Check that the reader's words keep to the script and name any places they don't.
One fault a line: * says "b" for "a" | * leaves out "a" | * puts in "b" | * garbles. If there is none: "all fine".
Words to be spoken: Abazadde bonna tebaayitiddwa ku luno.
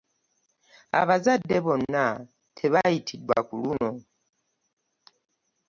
all fine